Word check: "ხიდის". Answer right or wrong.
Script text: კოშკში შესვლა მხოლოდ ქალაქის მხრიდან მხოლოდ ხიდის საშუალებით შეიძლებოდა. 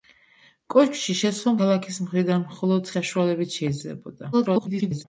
wrong